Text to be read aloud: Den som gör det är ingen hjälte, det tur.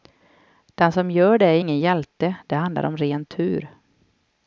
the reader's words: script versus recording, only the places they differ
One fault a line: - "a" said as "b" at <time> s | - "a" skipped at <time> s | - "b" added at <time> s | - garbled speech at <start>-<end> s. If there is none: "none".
- "handlar om ren" added at 2.5 s